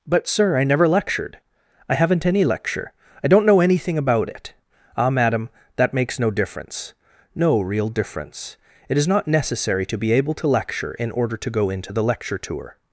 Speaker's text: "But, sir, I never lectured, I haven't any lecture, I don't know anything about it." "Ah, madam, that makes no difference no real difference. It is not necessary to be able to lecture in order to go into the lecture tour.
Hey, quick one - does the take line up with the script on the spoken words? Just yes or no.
yes